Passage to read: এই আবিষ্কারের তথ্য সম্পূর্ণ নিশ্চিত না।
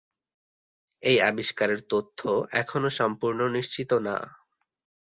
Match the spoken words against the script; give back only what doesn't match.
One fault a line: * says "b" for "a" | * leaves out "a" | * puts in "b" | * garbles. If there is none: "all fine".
* puts in "এখনও"